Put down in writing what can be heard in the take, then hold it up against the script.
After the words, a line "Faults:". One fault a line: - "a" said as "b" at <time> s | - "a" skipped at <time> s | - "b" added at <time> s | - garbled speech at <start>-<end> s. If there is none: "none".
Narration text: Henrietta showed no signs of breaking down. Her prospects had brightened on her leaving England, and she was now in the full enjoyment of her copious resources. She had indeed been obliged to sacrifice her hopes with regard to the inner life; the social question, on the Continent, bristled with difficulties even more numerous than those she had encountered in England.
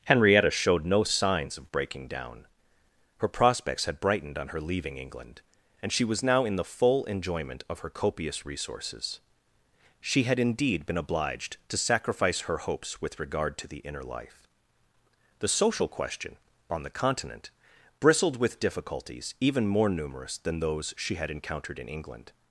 Henrietta showed no signs of breaking down. Her prospects had brightened on her leaving England, and she was now in the full enjoyment of her copious resources. She had indeed been obliged to sacrifice her hopes with regard to the inner life; the social question, on the Continent, bristled with difficulties even more numerous than those she had encountered in England.
Faults:
none